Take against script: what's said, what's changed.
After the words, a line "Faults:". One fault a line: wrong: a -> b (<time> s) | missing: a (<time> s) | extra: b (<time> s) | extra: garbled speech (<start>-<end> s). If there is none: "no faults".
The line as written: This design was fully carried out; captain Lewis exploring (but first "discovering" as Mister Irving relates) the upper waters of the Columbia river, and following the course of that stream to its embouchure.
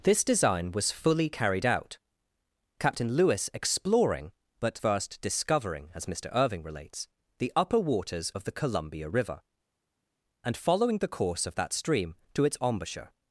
This design was fully carried out; captain Lewis exploring (but first "discovering" as Mister Irving relates) the upper waters of the Columbia river, and following the course of that stream to its embouchure.
Faults:
no faults